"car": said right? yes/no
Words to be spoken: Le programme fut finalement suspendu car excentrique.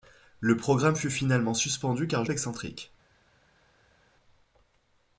yes